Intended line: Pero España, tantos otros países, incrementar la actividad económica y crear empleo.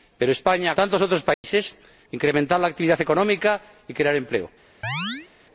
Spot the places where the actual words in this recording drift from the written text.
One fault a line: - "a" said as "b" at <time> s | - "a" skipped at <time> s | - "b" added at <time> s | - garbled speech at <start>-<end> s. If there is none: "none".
none